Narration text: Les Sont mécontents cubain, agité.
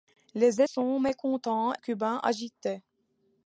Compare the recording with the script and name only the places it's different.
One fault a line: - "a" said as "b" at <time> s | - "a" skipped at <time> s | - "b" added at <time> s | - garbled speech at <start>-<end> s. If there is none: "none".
none